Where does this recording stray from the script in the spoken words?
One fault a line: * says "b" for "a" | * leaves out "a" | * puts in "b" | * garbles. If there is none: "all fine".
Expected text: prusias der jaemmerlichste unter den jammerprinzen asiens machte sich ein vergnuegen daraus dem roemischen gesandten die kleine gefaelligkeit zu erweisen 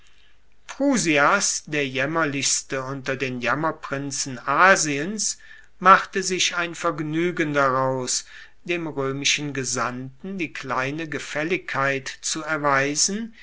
all fine